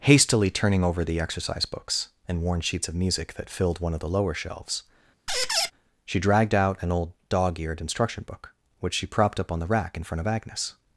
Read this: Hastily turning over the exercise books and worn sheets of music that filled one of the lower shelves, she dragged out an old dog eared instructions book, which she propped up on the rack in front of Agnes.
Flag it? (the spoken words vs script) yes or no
yes